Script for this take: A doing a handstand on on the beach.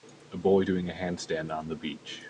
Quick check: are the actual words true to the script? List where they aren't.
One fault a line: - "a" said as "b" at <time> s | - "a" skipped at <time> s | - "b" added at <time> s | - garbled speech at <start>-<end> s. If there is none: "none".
- "boy" added at 0.4 s
- "on" skipped at 1.7 s